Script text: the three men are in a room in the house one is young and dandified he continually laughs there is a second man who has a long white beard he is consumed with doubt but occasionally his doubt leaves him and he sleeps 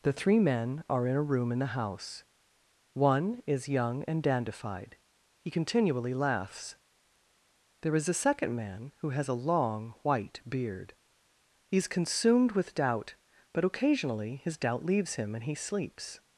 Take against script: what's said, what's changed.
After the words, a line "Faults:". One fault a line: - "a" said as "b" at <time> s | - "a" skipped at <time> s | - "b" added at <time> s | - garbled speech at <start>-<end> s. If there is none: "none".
the three men are in a room in the house one is young and dandified he continually laughs there is a second man who has a long white beard he is consumed with doubt but occasionally his doubt leaves him and he sleeps
Faults:
none